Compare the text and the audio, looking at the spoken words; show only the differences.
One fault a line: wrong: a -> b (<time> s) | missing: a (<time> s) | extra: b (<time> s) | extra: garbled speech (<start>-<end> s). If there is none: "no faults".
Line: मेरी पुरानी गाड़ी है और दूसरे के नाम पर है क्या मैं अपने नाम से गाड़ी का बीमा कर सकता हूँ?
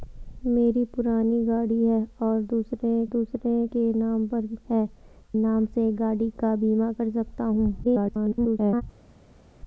extra: दूसरे (3.1 s)
missing: क्या मैं अपने (4.9 s)
extra: garbled speech (7.8-8.8 s)